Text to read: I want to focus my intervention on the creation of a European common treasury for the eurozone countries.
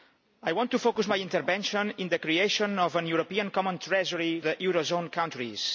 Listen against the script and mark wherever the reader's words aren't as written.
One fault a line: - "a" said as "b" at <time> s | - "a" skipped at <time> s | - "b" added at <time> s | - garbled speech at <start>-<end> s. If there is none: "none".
- "for" skipped at 4.4 s